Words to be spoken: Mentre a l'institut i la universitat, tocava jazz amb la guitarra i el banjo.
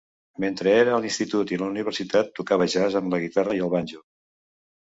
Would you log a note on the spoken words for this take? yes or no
yes